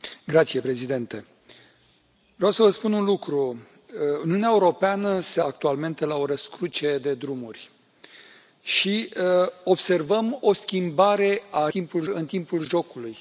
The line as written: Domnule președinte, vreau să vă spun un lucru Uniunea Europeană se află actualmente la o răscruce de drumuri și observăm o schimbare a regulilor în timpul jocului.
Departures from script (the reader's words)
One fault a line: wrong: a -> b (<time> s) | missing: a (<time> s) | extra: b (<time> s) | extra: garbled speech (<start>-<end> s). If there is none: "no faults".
missing: află (5.4 s)
wrong: regulilor -> timpul (11.7 s)